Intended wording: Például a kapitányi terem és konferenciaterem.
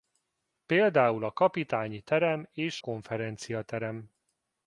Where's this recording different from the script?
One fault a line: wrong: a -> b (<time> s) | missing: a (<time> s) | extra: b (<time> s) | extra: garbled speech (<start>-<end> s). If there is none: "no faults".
no faults